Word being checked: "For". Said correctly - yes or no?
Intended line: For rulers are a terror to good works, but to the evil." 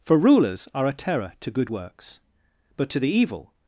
yes